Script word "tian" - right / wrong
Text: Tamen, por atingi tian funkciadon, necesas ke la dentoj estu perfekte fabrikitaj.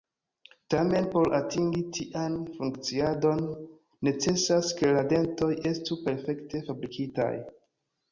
right